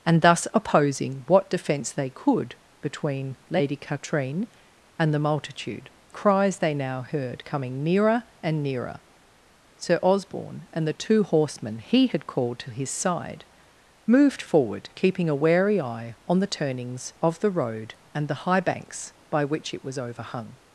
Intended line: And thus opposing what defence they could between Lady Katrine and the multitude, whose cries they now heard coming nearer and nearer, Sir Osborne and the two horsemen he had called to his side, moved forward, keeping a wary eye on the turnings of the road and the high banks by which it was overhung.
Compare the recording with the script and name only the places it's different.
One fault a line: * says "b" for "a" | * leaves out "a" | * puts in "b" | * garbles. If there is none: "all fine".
* leaves out "whose"